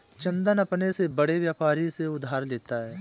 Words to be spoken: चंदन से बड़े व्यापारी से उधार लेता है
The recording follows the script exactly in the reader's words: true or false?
false